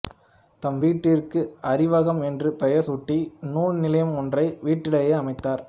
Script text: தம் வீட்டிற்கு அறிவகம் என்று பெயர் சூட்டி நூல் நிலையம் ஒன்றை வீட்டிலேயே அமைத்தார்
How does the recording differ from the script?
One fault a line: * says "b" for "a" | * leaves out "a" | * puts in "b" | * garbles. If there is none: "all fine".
all fine